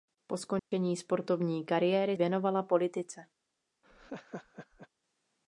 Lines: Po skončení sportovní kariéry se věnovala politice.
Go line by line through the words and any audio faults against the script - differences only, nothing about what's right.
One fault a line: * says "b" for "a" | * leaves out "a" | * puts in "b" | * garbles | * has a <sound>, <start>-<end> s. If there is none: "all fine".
* has a dropout, 0.6-0.7 s
* leaves out "se"
* has a laugh, 3.8-4.9 s